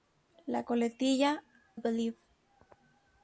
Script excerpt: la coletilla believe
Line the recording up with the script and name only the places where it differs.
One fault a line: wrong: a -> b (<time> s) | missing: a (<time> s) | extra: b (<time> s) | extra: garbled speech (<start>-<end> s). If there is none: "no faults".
no faults